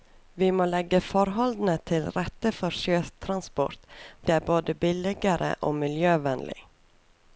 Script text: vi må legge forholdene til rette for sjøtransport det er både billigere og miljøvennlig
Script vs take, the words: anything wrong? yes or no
no